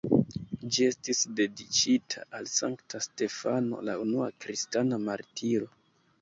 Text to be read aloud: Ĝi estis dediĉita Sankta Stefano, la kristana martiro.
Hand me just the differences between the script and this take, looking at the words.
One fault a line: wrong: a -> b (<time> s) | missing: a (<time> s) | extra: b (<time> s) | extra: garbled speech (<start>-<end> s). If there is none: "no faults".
extra: al (2.4 s)
extra: unua (4.1 s)